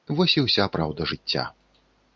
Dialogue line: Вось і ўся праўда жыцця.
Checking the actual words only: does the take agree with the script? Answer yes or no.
yes